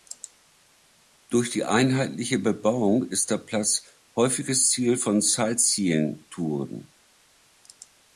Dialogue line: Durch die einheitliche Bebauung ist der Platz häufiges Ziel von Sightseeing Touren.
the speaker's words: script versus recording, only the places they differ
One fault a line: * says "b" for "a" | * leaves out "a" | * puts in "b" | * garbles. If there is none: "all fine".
all fine